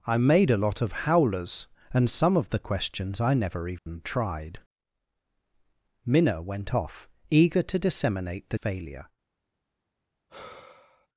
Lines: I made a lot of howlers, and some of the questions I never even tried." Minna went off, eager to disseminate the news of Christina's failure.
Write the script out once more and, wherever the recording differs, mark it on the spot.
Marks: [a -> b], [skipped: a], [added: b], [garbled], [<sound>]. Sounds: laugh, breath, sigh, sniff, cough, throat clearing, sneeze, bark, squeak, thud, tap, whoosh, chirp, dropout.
I made a lot of howlers, and some of the questions I never even [dropout] tried." Minna went off, eager to disseminate the [skipped: news of Christina's] failure. [sigh]